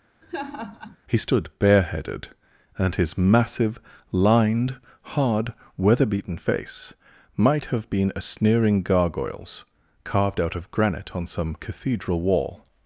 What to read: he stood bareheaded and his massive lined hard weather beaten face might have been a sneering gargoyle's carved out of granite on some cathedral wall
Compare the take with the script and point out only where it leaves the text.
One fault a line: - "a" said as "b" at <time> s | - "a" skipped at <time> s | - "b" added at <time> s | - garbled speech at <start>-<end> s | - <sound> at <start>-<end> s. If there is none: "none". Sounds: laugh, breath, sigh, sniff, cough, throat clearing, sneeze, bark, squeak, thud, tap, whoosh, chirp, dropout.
- laugh at 0.2-1.0 s